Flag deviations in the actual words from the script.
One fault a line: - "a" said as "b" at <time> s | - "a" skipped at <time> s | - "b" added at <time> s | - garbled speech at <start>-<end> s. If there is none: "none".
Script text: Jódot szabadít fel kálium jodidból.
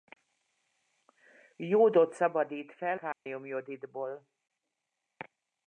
none